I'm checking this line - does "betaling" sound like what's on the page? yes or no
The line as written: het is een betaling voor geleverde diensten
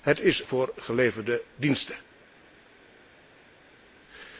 no